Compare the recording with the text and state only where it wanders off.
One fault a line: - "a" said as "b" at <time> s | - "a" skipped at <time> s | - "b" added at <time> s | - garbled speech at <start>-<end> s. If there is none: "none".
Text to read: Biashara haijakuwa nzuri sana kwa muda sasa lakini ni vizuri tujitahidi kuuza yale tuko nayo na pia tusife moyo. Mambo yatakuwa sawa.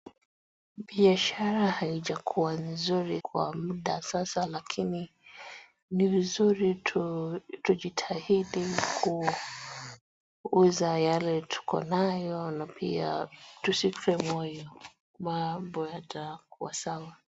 - "sana" skipped at 3.2 s